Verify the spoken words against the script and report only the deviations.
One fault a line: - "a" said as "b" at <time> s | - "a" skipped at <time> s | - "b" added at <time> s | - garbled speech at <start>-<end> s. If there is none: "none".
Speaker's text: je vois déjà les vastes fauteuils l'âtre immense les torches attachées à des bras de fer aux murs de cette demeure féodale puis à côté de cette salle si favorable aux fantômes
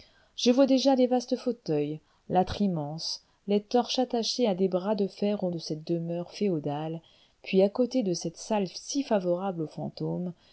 - "murs" skipped at 5.5 s